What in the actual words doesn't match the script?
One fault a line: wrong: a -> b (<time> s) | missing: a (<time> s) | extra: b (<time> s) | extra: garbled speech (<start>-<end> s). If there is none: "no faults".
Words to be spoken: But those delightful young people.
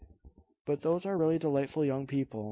extra: are really (1.1 s)